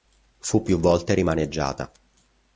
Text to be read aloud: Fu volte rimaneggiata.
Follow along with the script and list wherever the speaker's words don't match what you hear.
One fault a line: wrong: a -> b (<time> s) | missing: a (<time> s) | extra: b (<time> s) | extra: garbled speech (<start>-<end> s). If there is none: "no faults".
extra: più (0.6 s)